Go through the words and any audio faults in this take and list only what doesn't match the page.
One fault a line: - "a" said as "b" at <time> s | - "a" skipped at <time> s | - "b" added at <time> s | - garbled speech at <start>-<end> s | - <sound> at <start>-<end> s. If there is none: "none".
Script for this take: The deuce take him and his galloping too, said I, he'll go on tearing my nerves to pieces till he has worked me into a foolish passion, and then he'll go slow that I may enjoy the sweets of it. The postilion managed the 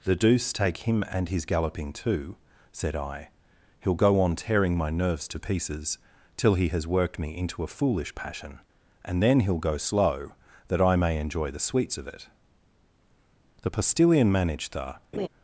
- laugh at 15.1-15.3 s